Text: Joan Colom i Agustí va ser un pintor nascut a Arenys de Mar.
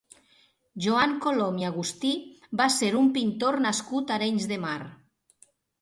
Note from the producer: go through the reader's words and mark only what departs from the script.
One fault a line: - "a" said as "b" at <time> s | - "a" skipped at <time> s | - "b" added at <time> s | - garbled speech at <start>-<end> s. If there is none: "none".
none